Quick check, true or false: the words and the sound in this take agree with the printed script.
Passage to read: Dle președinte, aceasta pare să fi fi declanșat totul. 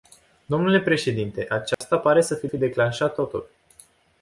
false